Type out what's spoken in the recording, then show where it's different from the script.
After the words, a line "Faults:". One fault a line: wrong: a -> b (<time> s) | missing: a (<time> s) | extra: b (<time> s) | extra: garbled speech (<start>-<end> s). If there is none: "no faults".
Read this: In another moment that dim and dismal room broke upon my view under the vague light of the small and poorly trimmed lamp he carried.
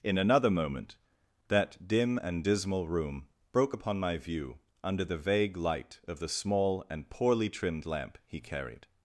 In another moment that dim and dismal room broke upon my view under the vague light of the small and poorly trimmed lamp he carried.
Faults:
no faults